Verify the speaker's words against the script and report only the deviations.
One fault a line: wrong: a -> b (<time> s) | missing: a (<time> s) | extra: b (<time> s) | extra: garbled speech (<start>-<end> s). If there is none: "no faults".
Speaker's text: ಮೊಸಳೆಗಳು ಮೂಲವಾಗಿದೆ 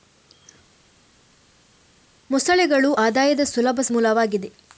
extra: ಆದಾಯದ ಸುಲಭ (3.0 s)